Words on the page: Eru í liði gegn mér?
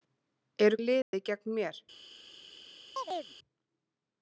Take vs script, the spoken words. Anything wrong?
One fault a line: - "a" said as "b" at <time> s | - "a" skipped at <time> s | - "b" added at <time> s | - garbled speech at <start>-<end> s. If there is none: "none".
none